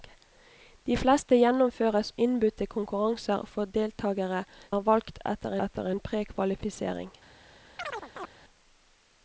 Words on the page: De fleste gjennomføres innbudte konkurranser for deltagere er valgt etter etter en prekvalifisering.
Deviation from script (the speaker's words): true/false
false